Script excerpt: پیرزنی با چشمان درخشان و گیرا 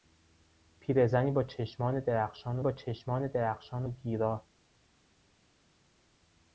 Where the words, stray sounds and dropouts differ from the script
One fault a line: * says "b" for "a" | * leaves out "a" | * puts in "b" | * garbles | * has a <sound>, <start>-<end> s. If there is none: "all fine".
* puts in "با چشمان درخشان"